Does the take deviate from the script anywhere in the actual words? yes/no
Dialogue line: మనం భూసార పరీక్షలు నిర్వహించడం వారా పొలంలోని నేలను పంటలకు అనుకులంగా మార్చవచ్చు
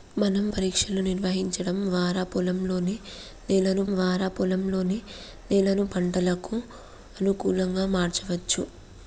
yes